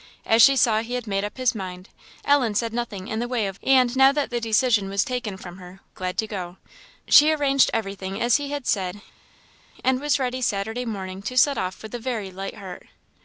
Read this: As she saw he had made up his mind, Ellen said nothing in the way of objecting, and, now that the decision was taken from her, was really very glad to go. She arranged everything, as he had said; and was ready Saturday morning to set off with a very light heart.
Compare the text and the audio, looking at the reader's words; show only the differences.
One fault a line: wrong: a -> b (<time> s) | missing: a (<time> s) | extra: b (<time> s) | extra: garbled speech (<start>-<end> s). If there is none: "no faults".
missing: objecting (3.6 s)
missing: was really very (5.8 s)